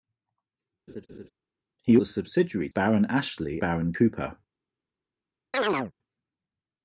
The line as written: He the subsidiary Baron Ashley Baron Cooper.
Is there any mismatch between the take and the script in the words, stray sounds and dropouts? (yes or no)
yes